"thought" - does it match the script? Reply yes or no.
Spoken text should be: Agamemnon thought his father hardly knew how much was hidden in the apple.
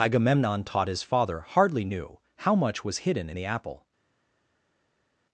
no